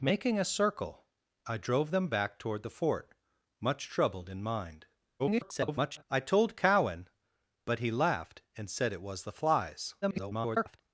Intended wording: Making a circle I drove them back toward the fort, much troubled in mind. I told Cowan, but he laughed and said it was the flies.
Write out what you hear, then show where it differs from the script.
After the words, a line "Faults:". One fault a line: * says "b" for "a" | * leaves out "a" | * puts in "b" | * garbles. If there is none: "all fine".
Making a circle I drove them back toward the fort, much troubled in mind. [garbled] I told Cowan, but he laughed and said it was the flies. [garbled]
Faults:
* garbles
* garbles